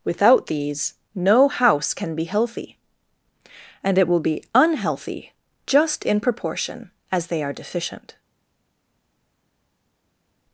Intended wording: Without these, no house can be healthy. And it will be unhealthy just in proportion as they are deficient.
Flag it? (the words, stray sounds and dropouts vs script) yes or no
no